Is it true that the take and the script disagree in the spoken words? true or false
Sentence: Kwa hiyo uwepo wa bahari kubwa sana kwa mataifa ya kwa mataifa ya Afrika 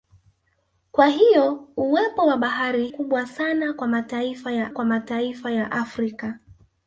false